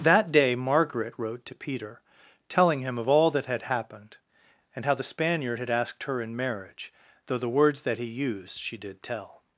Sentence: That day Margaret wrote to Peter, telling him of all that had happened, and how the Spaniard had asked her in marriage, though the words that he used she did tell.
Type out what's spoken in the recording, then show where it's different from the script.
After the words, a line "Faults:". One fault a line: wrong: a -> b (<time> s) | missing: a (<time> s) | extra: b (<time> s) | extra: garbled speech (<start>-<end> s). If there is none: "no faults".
That day Margaret wrote to Peter, telling him of all that had happened, and how the Spaniard had asked her in marriage, though the words that he used she did tell.
Faults:
no faults